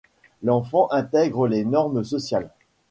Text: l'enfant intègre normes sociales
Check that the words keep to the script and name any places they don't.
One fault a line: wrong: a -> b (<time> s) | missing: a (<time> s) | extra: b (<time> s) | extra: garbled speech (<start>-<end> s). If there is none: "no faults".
extra: les (1.5 s)